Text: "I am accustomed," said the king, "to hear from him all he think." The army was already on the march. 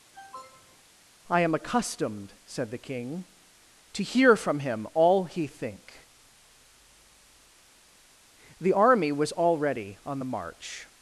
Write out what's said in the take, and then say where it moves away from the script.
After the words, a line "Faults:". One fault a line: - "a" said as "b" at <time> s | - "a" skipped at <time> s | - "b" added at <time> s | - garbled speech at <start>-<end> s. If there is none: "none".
"I am accustomed," said the king, "to hear from him all he think." The army was already on the march.
Faults:
none